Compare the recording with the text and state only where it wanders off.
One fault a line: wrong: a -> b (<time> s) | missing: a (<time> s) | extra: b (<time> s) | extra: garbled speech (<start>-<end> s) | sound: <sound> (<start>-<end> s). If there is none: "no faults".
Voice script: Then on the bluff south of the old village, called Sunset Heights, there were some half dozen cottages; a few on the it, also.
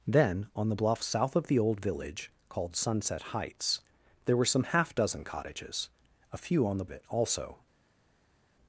no faults